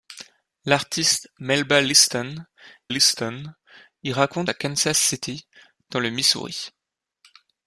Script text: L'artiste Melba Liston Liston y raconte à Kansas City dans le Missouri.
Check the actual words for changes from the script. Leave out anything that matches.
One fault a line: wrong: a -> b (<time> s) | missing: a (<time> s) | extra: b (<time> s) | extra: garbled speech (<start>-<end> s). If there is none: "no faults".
no faults